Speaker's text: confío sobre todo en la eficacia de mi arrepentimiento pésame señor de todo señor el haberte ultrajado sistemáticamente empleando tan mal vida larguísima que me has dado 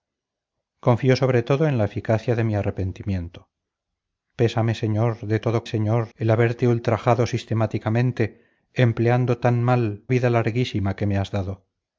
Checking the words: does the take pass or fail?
pass